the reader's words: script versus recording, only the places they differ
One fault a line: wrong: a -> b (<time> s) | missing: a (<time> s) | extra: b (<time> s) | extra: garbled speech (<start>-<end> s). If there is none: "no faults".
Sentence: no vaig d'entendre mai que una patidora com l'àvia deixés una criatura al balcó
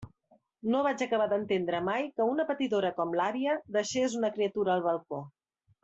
extra: acabar (1.1 s)